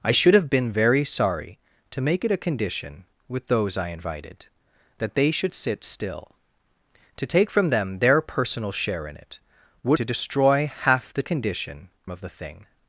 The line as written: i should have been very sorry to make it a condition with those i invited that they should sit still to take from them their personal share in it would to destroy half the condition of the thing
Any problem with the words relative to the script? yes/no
no